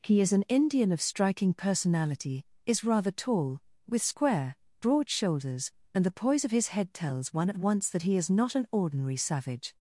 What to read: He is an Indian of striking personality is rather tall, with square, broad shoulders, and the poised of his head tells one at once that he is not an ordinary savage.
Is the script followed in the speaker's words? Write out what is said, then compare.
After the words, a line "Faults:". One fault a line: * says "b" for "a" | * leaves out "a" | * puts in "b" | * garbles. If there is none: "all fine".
He is an Indian of striking personality is rather tall, with square, broad shoulders, and the poise of his head tells one at once that he is not an ordinary savage.
Faults:
* says "poise" for "poised"